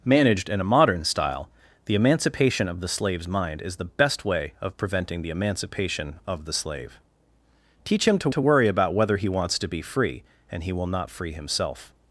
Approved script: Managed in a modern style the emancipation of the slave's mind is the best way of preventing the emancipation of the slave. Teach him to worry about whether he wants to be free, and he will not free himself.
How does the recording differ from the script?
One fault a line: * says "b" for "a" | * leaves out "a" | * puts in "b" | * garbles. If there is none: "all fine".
* puts in "to"